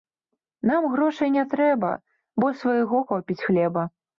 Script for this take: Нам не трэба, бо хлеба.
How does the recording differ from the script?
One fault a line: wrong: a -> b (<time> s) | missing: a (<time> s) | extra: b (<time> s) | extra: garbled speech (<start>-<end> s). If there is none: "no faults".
extra: грошай (0.9 s)
extra: свайго хопіць (2.6 s)